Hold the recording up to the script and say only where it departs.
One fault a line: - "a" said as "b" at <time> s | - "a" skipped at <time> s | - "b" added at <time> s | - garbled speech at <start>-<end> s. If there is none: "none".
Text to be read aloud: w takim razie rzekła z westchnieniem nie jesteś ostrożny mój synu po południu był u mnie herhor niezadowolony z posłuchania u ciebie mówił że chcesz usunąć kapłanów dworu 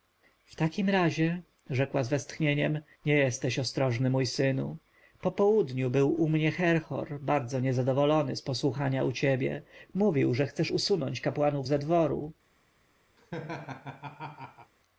- "bardzo" added at 7.2 s
- "ze" added at 11.7 s